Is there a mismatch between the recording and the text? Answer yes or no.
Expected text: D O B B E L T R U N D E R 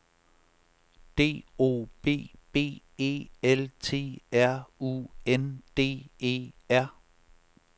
no